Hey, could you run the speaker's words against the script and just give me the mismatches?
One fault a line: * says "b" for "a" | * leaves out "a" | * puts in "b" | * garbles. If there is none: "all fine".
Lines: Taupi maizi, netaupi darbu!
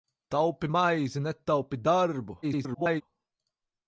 * garbles